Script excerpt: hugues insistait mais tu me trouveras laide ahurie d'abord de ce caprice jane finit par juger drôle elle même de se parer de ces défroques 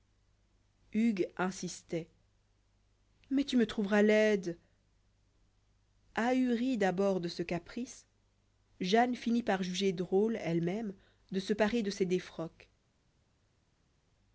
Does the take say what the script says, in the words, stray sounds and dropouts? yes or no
yes